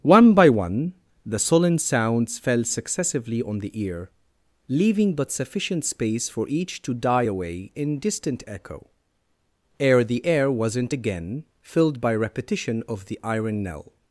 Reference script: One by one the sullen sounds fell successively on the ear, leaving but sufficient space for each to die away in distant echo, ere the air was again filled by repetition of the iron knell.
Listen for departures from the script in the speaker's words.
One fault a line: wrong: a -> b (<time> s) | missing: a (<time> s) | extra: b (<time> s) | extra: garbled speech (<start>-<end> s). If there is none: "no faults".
wrong: was -> wasn't (10.5 s)